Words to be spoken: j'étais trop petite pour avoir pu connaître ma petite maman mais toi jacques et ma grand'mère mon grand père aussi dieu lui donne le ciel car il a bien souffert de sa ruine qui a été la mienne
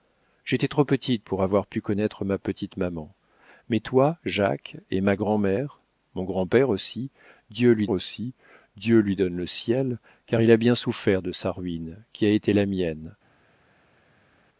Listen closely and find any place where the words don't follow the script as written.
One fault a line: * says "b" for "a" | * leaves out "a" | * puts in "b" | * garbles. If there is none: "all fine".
* puts in "aussi dieu lui"